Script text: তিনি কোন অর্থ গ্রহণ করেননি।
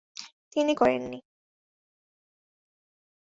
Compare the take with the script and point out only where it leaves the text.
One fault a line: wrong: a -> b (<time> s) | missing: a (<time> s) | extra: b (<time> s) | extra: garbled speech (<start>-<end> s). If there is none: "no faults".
missing: কোন অর্থ গ্রহণ (0.7 s)